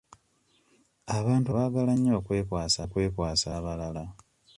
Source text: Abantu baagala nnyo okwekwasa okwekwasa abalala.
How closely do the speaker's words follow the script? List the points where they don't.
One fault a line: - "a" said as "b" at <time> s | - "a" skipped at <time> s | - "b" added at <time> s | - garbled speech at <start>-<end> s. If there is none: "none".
none